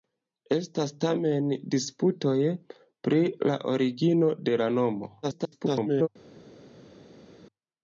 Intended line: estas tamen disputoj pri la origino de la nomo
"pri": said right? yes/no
yes